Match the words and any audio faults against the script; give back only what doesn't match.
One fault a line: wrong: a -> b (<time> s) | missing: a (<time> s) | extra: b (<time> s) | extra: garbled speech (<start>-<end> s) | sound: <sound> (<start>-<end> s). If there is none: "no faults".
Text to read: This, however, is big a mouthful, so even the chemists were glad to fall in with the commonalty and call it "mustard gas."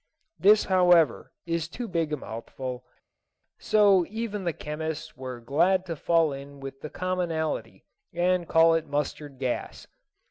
extra: too (1.7 s)